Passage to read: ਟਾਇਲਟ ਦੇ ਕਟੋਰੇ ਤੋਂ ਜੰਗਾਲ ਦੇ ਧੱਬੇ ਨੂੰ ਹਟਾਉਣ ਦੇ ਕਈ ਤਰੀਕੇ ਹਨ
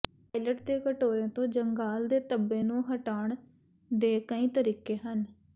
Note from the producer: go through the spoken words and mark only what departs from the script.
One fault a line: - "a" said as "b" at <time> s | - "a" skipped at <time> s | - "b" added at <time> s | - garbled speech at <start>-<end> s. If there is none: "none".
none